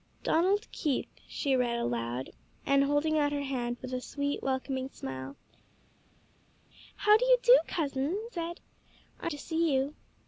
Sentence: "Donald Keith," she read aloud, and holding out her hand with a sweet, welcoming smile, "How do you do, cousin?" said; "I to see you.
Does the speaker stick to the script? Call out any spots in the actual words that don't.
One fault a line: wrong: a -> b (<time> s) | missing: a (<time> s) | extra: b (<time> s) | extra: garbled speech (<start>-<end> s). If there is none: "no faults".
no faults